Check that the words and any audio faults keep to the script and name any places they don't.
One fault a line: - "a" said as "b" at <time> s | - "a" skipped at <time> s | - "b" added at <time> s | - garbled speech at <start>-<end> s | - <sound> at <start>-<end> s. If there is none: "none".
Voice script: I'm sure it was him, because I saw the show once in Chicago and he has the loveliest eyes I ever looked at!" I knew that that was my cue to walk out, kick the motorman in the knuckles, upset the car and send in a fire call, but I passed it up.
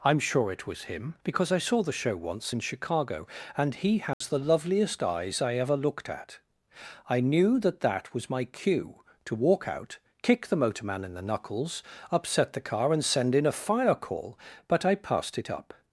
- dropout at 4.1-4.2 s